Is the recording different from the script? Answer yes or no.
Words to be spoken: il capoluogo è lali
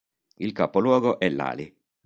no